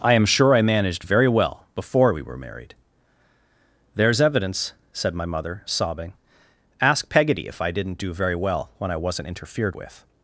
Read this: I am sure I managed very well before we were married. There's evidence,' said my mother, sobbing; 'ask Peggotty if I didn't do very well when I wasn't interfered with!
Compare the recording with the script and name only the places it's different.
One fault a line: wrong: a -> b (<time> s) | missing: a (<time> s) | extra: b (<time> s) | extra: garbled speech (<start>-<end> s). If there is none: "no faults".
no faults